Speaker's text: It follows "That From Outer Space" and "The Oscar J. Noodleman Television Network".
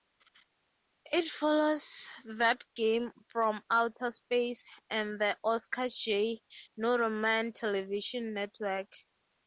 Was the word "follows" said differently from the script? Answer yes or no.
no